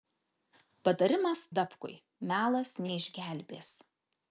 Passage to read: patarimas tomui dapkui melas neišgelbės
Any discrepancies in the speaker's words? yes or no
yes